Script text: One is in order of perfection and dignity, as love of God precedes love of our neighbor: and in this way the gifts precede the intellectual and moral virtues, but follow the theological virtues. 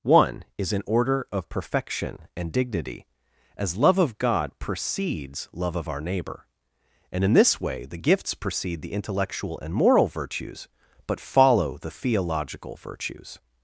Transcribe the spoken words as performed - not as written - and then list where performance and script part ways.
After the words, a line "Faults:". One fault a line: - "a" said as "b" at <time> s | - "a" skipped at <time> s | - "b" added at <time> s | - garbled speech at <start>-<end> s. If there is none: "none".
One is in order of perfection and dignity, as love of God precedes love of our neighbor: and in this way the gifts precede the intellectual and moral virtues, but follow the theological virtues.
Faults:
none